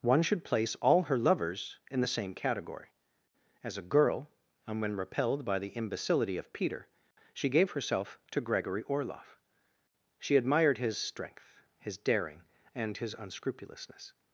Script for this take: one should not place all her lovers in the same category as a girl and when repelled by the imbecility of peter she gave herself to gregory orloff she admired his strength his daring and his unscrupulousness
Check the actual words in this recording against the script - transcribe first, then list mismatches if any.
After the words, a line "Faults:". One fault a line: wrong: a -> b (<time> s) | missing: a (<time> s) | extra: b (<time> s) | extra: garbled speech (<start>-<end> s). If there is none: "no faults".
one should place all her lovers in the same category as a girl and when repelled by the imbecility of peter she gave herself to gregory orloff she admired his strength his daring and his unscrupulousness
Faults:
missing: not (0.4 s)